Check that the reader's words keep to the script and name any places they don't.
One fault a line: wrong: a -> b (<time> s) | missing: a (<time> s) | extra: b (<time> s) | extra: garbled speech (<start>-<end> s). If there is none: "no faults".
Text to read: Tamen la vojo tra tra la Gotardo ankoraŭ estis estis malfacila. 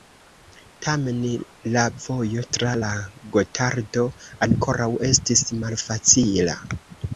missing: tra (2.7 s)
missing: estis (5.5 s)